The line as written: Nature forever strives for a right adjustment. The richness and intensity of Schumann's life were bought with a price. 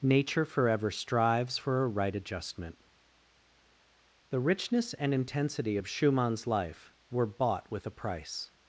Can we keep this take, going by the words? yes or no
yes